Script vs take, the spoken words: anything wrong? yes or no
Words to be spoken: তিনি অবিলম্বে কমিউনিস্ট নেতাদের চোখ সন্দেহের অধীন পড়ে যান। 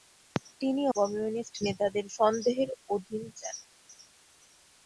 yes